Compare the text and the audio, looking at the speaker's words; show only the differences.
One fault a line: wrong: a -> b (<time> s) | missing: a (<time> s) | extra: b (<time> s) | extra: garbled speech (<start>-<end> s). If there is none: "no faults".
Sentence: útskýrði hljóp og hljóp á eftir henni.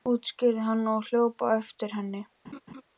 wrong: hljóp -> hann (0.7 s)